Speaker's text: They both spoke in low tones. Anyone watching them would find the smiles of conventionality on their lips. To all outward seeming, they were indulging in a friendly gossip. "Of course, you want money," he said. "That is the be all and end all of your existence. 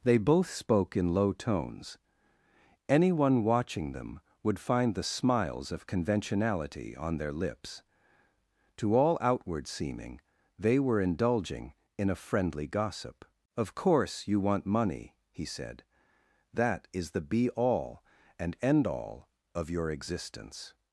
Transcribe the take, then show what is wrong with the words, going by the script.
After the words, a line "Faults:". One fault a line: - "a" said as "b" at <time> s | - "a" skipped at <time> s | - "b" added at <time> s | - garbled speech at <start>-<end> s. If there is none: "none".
They both spoke in low tones. Anyone watching them would find the smiles of conventionality on their lips. To all outward seeming, they were indulging in a friendly gossip. "Of course, you want money," he said. "That is the be all and end all of your existence.
Faults:
none